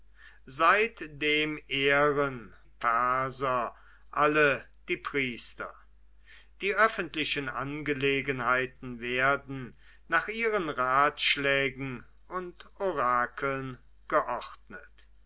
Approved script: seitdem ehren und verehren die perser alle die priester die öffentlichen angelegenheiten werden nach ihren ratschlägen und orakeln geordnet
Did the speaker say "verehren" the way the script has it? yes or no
no